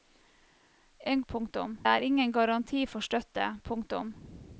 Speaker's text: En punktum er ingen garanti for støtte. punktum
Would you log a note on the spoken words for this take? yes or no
no